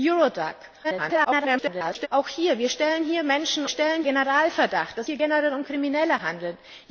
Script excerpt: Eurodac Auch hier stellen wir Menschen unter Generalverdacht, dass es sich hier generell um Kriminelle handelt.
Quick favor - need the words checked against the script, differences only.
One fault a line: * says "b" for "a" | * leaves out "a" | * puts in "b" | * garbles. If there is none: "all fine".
* garbles
* says "stellen" for "unter"
* leaves out "es sich"